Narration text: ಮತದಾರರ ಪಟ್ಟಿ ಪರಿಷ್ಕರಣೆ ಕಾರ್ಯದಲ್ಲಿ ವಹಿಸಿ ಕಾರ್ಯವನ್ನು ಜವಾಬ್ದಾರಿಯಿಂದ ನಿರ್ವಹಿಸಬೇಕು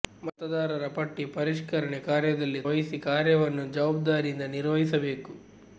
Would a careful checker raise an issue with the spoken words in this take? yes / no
no